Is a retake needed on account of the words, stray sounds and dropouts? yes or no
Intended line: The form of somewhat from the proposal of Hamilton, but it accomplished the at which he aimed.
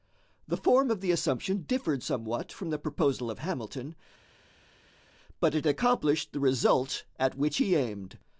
yes